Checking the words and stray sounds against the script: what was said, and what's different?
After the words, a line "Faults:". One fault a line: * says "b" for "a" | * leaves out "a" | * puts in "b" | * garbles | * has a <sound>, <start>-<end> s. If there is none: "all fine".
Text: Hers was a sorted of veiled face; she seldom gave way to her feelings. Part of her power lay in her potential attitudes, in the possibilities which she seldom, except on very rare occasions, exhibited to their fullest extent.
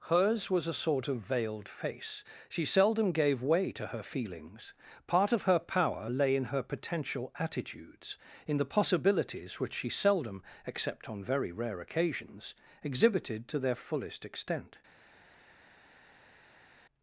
Hers was a sort of veiled face; she seldom gave way to her feelings. Part of her power lay in her potential attitudes, in the possibilities which she seldom, except on very rare occasions, exhibited to their fullest extent.
Faults:
* says "sort" for "sorted"